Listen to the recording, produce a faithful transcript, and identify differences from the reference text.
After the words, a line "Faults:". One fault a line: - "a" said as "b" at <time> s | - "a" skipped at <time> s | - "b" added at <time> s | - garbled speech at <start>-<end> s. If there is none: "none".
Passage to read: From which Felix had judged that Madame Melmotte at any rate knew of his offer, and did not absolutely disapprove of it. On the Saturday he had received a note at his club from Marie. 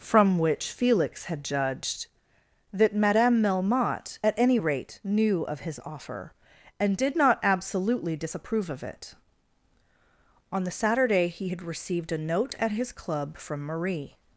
From which Felix had judged that Madame Melmotte at any rate knew of his offer, and did not absolutely disapprove of it. On the Saturday he had received a note at his club from Marie.
Faults:
none